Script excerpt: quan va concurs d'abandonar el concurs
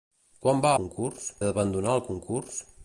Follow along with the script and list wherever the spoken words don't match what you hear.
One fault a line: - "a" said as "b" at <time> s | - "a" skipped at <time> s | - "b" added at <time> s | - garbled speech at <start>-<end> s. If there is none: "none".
none